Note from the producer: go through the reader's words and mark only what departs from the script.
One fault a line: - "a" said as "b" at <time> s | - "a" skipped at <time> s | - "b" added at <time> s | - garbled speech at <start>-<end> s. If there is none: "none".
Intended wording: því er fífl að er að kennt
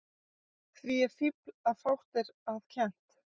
- "fátt" added at 1.8 s